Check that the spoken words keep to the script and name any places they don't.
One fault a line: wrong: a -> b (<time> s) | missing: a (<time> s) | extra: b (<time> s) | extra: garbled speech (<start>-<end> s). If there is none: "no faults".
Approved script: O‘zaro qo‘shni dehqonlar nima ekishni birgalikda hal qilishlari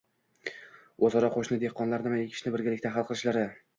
no faults